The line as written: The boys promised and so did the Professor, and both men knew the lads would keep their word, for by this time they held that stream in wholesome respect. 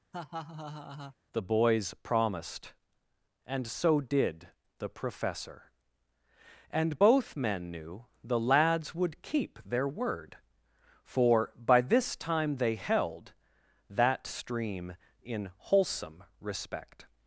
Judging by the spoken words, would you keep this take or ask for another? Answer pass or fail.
pass